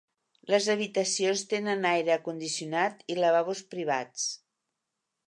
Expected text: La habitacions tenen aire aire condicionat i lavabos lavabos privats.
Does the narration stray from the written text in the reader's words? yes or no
yes